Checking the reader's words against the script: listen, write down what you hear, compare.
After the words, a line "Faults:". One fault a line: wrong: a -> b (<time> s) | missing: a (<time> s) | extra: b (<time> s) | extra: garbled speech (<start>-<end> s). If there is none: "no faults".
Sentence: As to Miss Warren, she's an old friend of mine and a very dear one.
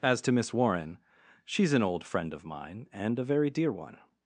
As to Miss Warren, she's an old friend of mine and a very dear one.
Faults:
no faults